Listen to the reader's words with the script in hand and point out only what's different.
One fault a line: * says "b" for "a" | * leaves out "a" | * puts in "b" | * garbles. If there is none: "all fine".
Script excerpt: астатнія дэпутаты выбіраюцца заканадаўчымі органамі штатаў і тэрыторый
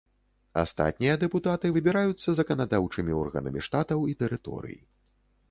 all fine